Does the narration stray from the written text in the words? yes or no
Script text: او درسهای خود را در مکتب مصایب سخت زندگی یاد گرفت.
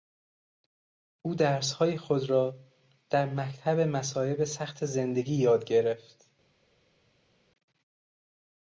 no